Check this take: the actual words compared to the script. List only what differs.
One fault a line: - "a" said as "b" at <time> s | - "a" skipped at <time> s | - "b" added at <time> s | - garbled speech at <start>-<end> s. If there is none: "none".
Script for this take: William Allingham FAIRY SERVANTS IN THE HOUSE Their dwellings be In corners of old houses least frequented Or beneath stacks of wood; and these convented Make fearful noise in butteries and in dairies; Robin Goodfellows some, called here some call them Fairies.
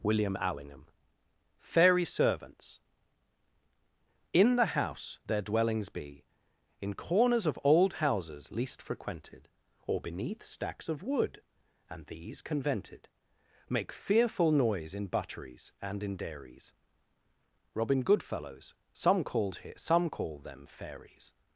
none